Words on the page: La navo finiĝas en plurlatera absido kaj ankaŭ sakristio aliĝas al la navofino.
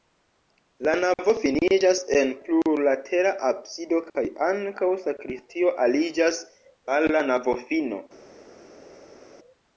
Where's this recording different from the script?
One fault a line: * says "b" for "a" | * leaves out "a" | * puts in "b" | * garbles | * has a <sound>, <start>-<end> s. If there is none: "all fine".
all fine